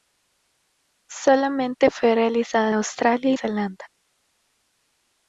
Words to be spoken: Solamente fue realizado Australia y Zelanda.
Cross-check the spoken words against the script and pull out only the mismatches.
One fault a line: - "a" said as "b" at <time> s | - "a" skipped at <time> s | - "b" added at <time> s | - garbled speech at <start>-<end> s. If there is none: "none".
none